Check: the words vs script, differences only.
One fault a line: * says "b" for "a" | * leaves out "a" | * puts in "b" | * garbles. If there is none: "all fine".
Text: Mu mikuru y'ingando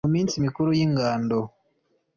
* puts in "minsi"